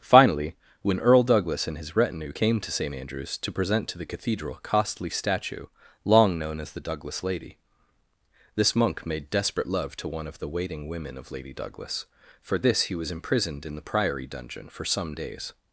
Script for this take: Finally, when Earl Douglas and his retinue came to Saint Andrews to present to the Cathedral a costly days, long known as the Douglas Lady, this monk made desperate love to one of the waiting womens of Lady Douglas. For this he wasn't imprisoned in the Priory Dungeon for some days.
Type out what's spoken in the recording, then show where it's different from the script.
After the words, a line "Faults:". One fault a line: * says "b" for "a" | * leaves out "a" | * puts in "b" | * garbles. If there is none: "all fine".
Finally, when Earl Douglas and his retinue came to Saint Andrews to present to the Cathedral a costly statue, long known as the Douglas Lady, this monk made desperate love to one of the waiting women of Lady Douglas. For this he was imprisoned in the Priory Dungeon for some days.
Faults:
* says "statue" for "days"
* says "women" for "womens"
* says "was" for "wasn't"